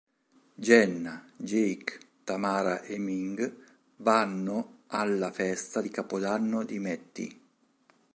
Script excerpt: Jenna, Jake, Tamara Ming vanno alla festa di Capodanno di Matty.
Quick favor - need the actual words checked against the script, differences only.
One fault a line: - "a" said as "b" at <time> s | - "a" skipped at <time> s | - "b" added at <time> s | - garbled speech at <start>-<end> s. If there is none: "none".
- "e" added at 2.8 s